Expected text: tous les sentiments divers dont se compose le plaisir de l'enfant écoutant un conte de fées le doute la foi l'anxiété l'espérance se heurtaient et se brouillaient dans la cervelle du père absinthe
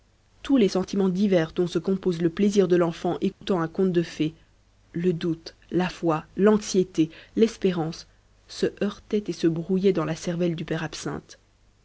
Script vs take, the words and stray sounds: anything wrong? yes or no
yes